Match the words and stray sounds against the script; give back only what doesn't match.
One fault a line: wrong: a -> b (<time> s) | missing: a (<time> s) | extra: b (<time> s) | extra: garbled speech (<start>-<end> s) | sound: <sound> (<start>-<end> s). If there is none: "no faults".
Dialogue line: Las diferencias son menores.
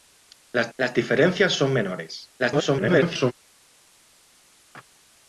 extra: las (0.8 s)
extra: garbled speech (2.4-3.3 s)